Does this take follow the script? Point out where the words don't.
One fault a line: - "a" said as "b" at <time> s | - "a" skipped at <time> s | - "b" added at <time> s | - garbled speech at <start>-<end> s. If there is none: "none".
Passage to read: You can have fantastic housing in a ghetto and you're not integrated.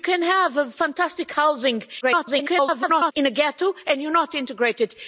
- garbled speech at 2.0-3.1 s